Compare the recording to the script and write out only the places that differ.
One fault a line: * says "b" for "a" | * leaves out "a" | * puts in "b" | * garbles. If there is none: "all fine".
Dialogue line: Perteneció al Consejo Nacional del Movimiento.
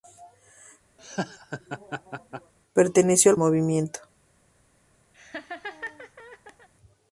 * leaves out "Consejo Nacional del"